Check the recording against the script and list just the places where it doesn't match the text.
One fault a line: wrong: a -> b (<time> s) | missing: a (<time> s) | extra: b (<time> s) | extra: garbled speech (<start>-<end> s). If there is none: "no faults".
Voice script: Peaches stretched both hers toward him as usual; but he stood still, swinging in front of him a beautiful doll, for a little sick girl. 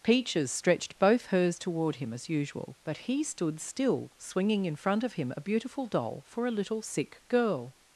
no faults